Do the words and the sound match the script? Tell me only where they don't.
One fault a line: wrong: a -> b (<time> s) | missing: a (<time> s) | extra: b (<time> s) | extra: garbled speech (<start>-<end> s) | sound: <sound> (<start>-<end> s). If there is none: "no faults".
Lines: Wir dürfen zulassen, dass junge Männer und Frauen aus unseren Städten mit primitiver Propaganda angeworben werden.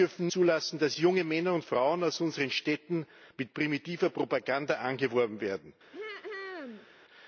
sound: throat clearing (5.9-6.9 s)